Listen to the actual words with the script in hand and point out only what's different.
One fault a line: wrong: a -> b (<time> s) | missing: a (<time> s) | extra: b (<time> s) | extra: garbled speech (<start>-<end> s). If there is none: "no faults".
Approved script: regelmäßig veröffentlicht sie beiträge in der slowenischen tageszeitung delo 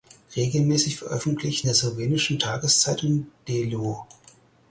missing: sie beiträge in (1.7 s)